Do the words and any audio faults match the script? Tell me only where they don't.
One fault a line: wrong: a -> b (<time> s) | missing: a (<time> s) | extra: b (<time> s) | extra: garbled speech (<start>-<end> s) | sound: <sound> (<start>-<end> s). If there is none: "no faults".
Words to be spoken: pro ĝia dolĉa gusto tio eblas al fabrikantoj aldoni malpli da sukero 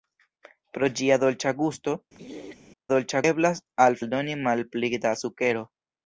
sound: throat clearing (2.1-2.6 s)
wrong: tio -> dolĉa (2.9 s)
missing: fabrikantoj (4.0 s)